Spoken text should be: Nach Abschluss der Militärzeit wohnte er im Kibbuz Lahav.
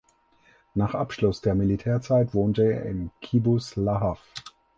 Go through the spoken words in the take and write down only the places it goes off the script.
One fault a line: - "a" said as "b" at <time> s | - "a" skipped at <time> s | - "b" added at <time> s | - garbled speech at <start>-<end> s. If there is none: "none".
none